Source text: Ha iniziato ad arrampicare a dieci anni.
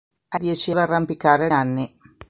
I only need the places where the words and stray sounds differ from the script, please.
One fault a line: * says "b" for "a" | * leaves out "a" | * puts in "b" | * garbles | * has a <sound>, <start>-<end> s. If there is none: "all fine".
* says "dieci" for "iniziato"
* leaves out "dieci"